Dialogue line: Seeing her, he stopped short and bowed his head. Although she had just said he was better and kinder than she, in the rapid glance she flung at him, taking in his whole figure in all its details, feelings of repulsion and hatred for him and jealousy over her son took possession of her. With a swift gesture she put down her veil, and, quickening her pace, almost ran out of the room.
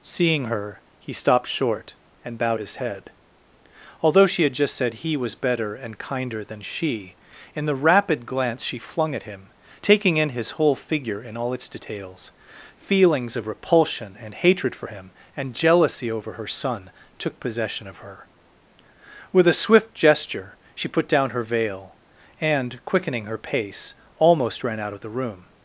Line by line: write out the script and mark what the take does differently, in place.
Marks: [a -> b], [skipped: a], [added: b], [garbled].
Seeing her, he stopped short and bowed his head. Although she had just said he was better and kinder than she, in the rapid glance she flung at him, taking in his whole figure in all its details, feelings of repulsion and hatred for him and jealousy over her son took possession of her. With a swift gesture she put down her veil, and, quickening her pace, almost ran out of the room.